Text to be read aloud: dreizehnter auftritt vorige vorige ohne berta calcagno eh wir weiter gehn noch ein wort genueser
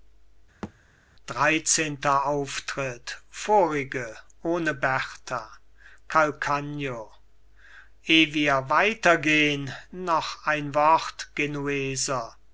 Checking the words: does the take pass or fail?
fail